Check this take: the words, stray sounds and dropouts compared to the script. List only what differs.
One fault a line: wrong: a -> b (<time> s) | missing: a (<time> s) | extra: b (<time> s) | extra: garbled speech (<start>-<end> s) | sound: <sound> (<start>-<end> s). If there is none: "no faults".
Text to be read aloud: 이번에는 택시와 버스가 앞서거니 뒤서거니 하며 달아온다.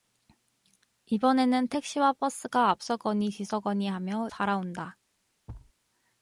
sound: thud (5.5-5.7 s)